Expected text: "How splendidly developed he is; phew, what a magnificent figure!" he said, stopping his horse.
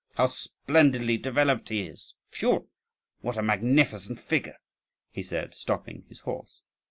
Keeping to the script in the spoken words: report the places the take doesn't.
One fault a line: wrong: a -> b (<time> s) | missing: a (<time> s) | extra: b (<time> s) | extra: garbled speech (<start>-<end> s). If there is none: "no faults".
no faults